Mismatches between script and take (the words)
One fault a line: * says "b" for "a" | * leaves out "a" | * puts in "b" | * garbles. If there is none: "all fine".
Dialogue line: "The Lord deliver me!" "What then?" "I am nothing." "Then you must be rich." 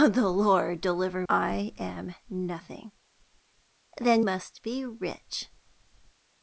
* leaves out "me What then"
* leaves out "you"